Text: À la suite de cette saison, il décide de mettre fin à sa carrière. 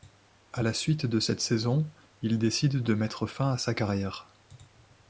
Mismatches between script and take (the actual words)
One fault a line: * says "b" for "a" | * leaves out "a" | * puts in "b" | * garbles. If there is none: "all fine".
all fine